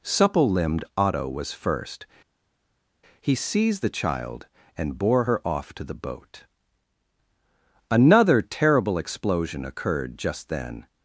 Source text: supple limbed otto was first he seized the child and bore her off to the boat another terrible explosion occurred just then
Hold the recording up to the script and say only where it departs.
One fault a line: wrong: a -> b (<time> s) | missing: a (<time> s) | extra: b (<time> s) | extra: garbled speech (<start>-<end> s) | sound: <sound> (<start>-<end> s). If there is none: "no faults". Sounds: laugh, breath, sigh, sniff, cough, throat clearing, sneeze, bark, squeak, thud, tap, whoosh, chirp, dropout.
no faults